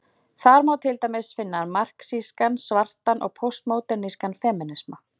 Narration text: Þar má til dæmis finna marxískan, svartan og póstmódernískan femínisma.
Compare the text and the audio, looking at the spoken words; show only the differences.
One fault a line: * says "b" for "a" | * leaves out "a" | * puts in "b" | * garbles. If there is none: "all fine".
all fine